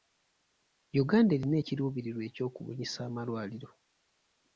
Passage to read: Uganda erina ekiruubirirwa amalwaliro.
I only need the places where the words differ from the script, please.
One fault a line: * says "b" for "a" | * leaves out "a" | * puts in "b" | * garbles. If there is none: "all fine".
* puts in "ekyokubunyisa"